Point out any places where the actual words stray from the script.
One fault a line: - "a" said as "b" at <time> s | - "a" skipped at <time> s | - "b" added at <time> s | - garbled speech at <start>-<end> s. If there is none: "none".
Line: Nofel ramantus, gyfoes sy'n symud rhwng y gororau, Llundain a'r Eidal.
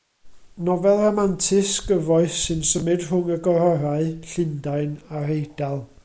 none